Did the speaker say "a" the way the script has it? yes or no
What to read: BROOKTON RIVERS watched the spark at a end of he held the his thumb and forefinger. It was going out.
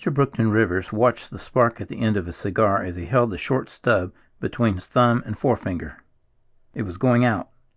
no